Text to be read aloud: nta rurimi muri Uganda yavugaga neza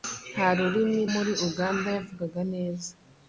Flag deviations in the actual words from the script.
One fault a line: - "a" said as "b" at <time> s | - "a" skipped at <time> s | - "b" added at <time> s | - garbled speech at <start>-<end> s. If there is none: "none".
none